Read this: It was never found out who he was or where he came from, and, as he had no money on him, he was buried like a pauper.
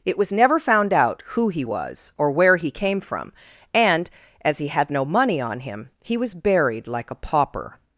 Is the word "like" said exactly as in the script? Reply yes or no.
yes